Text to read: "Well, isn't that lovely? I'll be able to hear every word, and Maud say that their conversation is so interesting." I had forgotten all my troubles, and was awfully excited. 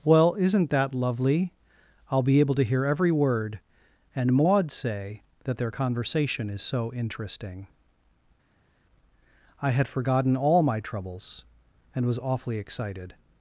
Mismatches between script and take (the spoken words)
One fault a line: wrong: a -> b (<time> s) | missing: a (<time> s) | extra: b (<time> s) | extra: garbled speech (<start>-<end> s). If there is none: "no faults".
no faults